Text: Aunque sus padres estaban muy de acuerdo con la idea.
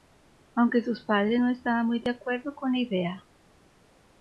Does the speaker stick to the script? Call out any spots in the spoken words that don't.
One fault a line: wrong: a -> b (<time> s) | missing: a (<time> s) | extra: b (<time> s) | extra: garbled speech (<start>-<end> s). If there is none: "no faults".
extra: no (1.4 s)